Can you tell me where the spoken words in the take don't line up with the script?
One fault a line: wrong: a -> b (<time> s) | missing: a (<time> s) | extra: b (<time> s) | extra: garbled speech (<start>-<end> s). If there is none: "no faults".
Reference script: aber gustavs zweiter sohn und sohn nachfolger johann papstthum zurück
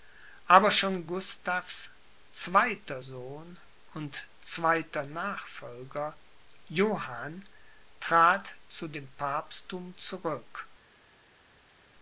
extra: schon (0.7 s)
wrong: sohn -> zweiter (4.4 s)
extra: trat zu dem (8.0 s)